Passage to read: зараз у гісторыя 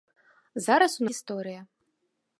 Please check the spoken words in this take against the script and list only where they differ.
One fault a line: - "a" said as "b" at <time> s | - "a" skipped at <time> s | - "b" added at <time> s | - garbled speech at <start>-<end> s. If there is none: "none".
none